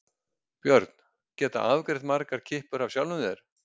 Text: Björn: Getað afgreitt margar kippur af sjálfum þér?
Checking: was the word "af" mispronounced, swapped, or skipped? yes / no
no